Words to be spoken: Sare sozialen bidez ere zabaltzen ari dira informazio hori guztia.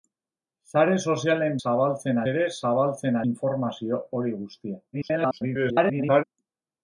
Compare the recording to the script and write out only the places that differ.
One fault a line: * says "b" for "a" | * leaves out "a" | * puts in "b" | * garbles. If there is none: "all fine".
* says "zabaltzen" for "bidez"
* leaves out "ari dira"
* garbles